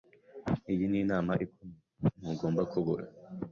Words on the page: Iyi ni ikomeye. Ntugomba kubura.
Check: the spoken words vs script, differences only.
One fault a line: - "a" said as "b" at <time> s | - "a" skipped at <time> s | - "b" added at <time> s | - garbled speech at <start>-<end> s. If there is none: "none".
- "inama" added at 1.0 s